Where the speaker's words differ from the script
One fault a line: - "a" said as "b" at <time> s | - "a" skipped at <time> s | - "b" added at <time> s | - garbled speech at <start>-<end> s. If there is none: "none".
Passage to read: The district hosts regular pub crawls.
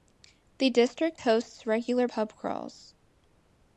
none